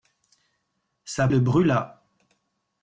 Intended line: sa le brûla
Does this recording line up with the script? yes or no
yes